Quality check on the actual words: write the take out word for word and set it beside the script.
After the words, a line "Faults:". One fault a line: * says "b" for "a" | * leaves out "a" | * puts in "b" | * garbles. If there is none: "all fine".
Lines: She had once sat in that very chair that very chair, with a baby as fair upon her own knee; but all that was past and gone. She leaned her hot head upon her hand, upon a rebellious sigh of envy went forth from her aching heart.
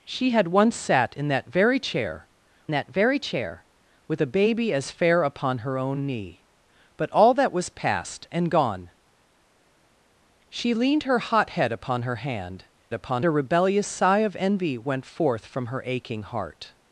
She had once sat in that very chair that very chair, with a baby as fair upon her own knee; but all that was past and gone. She leaned her hot head upon her hand, upon a rebellious sigh of envy went forth from her aching heart.
Faults:
all fine